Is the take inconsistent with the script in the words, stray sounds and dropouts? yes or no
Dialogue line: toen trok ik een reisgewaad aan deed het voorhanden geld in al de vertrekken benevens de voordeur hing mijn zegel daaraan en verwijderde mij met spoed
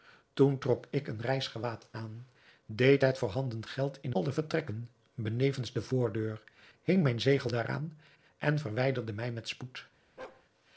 yes